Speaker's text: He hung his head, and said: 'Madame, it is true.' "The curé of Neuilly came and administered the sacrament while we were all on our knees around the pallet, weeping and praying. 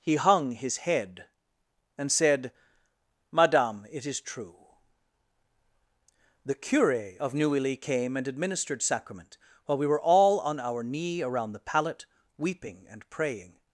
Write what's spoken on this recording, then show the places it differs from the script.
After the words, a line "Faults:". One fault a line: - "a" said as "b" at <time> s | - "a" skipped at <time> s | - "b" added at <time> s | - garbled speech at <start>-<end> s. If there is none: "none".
He hung his head, and said: 'Madame, it is true.' "The curé of Neuilly came and administered sacrament while we were all on our knee around the pallet, weeping and praying.
Faults:
- "the" skipped at 8.8 s
- "knees" said as "knee" at 10.8 s